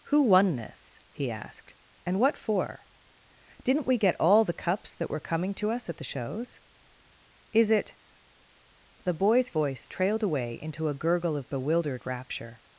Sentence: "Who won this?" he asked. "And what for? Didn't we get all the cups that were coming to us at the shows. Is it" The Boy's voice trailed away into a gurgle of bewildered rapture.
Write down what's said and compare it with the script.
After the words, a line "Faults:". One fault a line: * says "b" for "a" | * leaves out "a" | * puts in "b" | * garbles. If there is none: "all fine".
"Who won this?" he asked. "And what for? Didn't we get all the cups that were coming to us at the shows. Is it" The Boy's voice trailed away into a gurgle of bewildered rapture.
Faults:
all fine